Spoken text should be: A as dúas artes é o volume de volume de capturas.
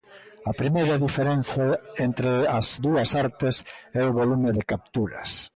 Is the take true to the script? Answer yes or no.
no